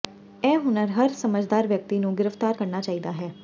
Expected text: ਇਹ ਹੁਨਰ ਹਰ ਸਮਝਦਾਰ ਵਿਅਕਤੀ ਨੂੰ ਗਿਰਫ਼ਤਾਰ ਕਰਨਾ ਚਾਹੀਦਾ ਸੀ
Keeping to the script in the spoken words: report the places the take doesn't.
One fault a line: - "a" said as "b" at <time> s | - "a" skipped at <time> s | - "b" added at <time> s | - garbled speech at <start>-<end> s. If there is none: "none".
- "ਸੀ" said as "ਹੈ" at 3.1 s